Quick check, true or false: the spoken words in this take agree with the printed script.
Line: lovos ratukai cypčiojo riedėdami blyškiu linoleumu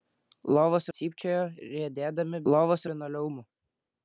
false